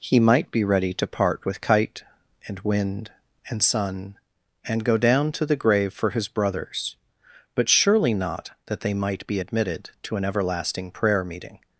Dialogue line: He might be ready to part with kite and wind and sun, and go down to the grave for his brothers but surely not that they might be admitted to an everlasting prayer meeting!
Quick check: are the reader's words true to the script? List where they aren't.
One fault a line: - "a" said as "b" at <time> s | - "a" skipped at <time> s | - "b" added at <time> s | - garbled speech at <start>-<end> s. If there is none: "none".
none